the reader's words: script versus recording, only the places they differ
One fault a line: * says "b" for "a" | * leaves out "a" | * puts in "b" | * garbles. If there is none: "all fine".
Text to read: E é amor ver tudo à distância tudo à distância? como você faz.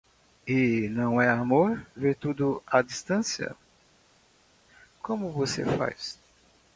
* puts in "não"
* leaves out "tudo à distância"